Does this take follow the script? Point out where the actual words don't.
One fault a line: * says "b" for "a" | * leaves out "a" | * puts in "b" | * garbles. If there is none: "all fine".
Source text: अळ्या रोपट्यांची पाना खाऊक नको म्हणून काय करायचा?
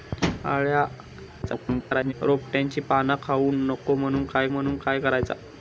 * garbles
* puts in "म्हणून काय"